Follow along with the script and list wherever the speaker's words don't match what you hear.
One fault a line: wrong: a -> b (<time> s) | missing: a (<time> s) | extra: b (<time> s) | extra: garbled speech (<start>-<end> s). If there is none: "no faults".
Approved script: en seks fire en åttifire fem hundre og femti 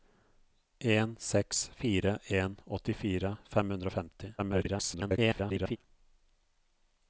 extra: garbled speech (4.4-5.8 s)